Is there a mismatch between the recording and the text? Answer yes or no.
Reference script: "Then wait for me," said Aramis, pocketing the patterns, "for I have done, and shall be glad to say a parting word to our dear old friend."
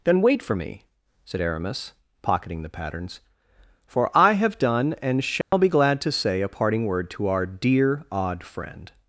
yes